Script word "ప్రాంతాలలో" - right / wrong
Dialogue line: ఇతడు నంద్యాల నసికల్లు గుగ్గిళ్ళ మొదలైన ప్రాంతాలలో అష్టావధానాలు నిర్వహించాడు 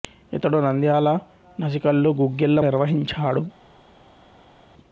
wrong